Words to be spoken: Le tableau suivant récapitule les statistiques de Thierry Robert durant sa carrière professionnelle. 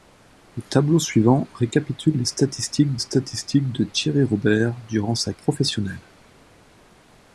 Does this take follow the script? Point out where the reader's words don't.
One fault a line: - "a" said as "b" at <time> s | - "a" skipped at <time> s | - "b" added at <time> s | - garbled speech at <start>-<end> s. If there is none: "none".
- "statistiques" added at 3.0 s
- "carrière" skipped at 5.3 s